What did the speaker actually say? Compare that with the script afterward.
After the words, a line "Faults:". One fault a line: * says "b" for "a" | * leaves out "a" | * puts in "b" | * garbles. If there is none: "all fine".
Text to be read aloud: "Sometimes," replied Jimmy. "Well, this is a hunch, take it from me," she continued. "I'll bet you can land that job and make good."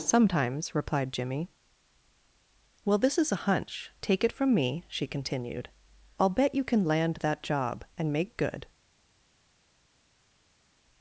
"Sometimes," replied Jimmy. "Well, this is a hunch, take it from me," she continued. "I'll bet you can land that job and make good."
Faults:
all fine